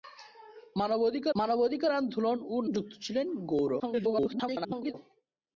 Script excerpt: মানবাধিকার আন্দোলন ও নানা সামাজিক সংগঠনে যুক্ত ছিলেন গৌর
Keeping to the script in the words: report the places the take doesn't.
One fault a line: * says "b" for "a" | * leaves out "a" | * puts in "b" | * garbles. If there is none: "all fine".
* puts in "মানবাধিকার"
* leaves out "নানা সামাজিক সংগঠনে"
* garbles